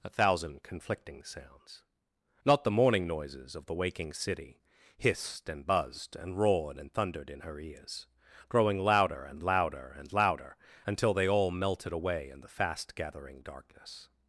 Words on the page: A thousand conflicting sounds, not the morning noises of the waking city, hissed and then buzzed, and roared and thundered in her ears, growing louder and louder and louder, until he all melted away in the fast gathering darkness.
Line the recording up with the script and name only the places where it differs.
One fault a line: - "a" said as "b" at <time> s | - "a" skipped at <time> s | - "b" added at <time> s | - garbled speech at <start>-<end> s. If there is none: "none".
- "then" skipped at 5.6 s
- "he" said as "they" at 11.1 s